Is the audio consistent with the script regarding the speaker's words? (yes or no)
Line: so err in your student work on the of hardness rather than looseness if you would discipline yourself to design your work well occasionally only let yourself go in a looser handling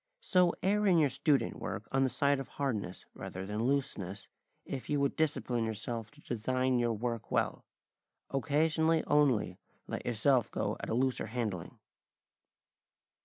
no